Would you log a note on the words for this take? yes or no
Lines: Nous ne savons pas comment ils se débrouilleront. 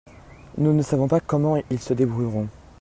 no